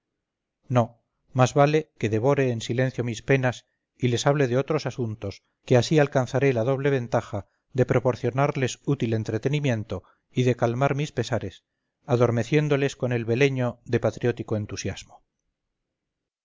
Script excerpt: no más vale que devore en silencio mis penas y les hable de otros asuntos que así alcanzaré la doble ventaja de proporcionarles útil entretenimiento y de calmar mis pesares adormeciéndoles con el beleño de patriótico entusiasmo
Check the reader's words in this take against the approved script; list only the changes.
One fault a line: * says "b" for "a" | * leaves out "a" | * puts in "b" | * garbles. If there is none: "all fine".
all fine